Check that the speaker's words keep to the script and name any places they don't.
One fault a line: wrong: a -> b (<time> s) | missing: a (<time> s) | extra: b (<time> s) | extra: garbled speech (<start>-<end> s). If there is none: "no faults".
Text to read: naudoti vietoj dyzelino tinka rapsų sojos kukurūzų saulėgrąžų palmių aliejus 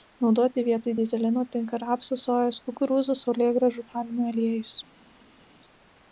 no faults